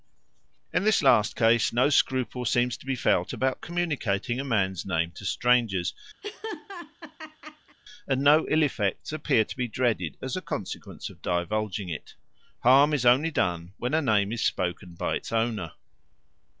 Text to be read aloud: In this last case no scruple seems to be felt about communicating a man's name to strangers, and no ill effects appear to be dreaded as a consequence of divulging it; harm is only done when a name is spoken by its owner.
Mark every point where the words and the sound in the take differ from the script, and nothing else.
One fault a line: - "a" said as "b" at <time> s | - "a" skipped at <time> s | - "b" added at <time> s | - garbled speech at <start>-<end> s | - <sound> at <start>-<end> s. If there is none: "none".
- laugh at 6.2-7.8 s